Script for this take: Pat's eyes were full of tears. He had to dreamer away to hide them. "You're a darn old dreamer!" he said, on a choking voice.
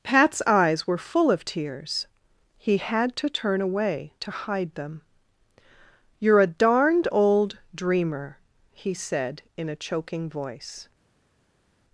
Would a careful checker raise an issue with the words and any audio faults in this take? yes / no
yes